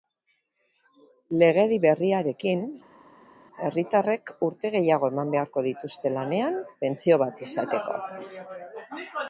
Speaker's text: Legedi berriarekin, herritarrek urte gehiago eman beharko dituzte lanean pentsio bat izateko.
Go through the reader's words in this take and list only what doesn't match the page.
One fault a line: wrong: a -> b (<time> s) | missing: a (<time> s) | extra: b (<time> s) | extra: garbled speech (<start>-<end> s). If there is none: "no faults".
no faults